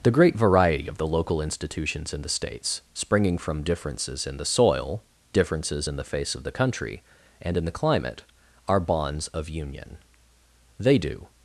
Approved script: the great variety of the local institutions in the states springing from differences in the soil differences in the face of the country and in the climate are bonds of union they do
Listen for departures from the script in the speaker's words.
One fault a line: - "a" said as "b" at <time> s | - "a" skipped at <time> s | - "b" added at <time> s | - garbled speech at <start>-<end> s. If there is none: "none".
none